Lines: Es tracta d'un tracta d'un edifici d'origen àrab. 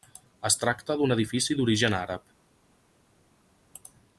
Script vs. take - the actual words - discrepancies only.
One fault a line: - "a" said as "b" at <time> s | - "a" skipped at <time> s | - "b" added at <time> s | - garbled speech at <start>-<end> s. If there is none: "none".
- "tracta d'un" skipped at 1.1 s